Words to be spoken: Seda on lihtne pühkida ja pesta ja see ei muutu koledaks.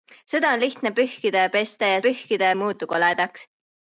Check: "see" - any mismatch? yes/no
yes